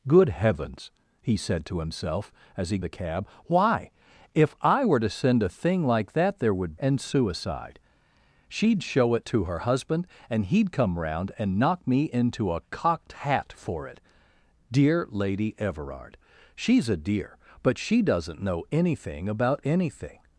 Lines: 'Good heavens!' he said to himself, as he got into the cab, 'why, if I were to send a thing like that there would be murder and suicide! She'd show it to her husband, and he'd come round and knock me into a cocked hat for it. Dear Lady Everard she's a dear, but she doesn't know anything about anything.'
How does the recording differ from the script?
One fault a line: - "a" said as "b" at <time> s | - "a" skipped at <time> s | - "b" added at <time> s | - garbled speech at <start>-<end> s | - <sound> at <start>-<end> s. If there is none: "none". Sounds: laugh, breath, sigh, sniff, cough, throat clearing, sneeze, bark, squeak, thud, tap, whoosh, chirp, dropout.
- "got into" skipped at 2.8 s
- "be murder" skipped at 6.8 s